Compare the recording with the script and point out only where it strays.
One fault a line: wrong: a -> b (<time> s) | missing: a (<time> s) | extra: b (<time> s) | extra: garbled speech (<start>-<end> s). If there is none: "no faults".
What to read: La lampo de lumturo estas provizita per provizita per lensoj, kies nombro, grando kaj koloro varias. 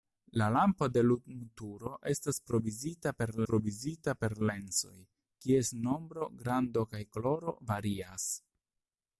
no faults